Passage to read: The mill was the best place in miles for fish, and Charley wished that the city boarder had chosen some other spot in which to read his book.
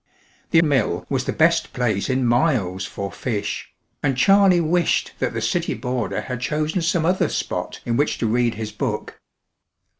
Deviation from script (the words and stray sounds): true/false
false